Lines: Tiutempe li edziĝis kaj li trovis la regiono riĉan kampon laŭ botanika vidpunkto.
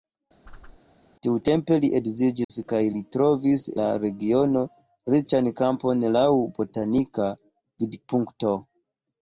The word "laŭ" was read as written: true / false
true